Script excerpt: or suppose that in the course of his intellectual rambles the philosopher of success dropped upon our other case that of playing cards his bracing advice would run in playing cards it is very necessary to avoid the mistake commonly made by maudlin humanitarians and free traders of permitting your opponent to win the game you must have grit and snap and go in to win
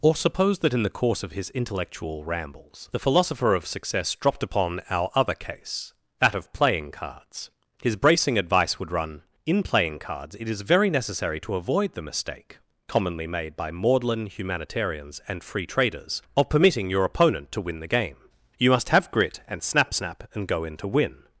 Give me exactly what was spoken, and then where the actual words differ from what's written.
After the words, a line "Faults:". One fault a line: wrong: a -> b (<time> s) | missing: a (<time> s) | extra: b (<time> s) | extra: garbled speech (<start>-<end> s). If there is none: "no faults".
or suppose that in the course of his intellectual rambles the philosopher of success dropped upon our other case that of playing cards his bracing advice would run in playing cards it is very necessary to avoid the mistake commonly made by maudlin humanitarians and free traders of permitting your opponent to win the game you must have grit and snap snap and go in to win
Faults:
extra: snap (19.9 s)